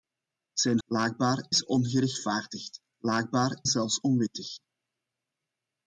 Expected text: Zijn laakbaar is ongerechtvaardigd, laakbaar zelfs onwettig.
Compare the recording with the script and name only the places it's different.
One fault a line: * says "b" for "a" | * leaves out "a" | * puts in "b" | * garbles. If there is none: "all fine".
all fine